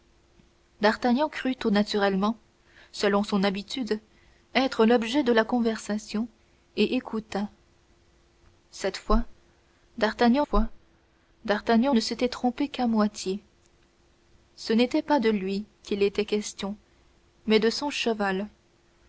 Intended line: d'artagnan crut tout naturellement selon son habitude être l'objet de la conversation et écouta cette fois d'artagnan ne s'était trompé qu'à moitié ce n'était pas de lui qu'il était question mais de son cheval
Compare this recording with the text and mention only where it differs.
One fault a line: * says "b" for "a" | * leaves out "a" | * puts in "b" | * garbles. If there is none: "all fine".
* puts in "fois d'artagnan"